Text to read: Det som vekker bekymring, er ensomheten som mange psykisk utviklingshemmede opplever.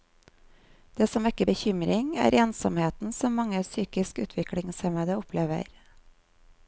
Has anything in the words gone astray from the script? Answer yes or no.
no